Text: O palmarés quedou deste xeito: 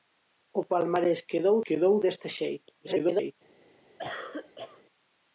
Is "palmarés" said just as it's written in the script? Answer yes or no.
yes